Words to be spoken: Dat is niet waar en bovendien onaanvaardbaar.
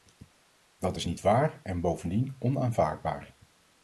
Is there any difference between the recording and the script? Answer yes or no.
no